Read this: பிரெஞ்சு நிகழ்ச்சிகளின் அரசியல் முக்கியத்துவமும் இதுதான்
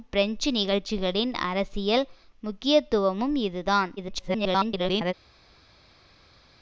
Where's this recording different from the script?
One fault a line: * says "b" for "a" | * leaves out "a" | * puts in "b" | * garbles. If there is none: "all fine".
* garbles